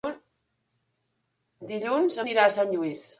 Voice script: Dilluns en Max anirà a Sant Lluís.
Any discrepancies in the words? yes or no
yes